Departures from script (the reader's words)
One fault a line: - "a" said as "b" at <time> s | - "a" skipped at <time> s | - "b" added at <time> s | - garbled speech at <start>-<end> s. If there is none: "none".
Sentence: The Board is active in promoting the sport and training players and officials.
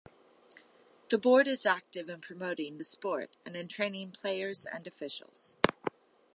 - "in" added at 3.6 s